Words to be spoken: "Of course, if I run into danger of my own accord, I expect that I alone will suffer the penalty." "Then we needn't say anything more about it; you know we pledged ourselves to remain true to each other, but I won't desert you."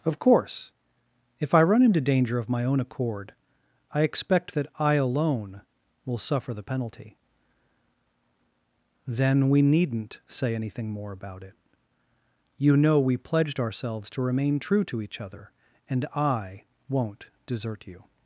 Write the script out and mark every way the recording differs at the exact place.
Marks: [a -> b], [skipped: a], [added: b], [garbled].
"Of course, if I run into danger of my own accord, I expect that I alone will suffer the penalty." "Then we needn't say anything more about it; you know we pledged ourselves to remain true to each other, [but -> and] I won't desert you."